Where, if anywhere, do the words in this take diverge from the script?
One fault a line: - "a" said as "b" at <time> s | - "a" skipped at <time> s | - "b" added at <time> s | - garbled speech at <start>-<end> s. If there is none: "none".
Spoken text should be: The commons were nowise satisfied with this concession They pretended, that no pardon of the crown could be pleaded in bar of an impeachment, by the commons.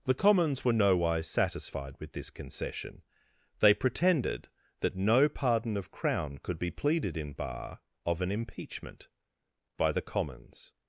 - "the" skipped at 5.9 s